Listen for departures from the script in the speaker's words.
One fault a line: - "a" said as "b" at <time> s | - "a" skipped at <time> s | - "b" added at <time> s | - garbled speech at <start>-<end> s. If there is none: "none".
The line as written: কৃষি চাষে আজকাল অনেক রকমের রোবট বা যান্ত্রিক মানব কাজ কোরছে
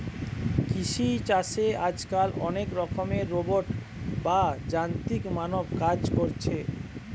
none